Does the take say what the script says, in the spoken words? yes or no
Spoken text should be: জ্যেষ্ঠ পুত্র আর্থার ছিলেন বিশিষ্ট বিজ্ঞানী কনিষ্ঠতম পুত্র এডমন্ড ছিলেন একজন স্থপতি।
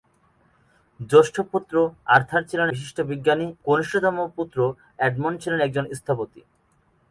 yes